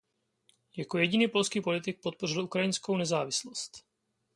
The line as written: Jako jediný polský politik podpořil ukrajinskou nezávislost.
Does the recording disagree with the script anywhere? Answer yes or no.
no